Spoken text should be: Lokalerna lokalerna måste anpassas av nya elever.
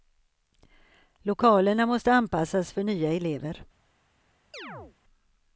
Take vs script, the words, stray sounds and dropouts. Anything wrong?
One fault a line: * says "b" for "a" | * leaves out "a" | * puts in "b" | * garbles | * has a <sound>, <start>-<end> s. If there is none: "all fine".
* leaves out "lokalerna"
* says "för" for "av"
* has a chirp, 4.5-5.0 s